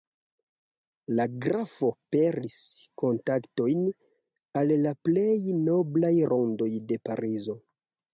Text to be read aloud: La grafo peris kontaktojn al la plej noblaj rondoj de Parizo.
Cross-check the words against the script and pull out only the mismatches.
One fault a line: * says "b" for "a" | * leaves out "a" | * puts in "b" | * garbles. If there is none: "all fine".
all fine